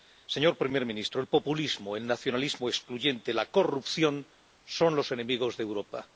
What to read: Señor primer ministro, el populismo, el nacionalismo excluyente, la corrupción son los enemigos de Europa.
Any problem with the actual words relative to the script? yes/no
no